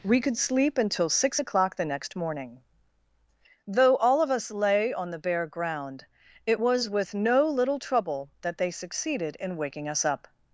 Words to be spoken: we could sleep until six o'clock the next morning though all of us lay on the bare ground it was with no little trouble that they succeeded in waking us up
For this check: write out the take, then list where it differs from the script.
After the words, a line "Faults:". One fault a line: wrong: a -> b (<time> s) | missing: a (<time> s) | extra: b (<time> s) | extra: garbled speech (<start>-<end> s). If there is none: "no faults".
we could sleep until six o'clock the next morning though all of us lay on the bare ground it was with no little trouble that they succeeded in waking us up
Faults:
no faults